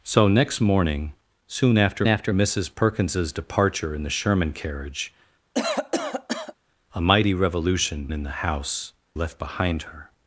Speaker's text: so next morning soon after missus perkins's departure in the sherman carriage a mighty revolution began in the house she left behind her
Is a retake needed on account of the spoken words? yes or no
yes